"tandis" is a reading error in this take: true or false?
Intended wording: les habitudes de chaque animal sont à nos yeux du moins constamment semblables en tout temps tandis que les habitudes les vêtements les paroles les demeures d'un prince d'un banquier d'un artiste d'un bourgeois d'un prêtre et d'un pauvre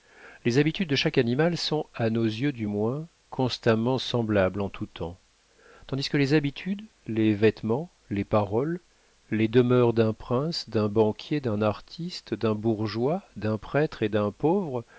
false